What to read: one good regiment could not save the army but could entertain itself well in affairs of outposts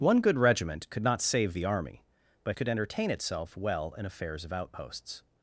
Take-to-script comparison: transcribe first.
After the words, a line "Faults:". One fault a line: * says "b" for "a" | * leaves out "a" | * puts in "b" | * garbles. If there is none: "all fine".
one good regiment could not save the army but could entertain itself well in affairs of outposts
Faults:
all fine